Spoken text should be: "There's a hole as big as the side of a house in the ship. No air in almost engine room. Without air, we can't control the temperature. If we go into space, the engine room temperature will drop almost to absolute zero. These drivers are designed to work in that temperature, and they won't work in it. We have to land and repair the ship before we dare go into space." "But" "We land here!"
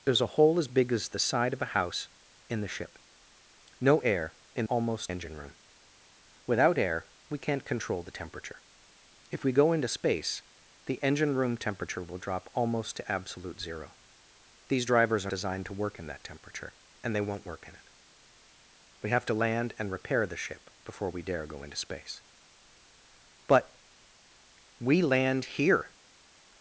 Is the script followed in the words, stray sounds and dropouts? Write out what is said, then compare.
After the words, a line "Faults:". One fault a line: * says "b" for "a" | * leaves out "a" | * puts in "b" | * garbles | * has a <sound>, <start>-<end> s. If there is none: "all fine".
"There's a hole as big as the side of a house in the ship. No air in almost engine room. Without air, we can't control the temperature. If we go into space, the engine room temperature will drop almost to absolute zero. These drivers are designed to work in that temperature, and they won't work in it. We have to land and repair the ship before we dare go into space." "But" "We land here!"
Faults:
all fine